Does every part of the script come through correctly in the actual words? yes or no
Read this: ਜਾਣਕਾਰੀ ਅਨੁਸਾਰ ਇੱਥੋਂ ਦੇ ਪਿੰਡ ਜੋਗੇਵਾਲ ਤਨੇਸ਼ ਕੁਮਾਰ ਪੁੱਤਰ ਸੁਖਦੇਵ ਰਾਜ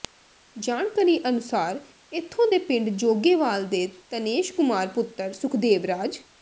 no